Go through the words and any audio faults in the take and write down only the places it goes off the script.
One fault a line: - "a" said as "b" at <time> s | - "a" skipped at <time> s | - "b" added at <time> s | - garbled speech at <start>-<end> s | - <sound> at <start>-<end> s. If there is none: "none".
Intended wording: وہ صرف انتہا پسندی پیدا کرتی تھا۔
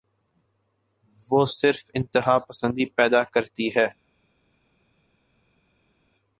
- "تھا" said as "ہے" at 3.8 s